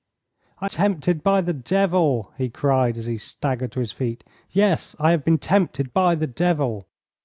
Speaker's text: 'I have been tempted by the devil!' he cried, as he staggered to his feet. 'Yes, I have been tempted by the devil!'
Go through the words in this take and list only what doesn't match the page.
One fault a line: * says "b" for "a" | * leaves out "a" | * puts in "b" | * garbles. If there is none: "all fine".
* leaves out "have been"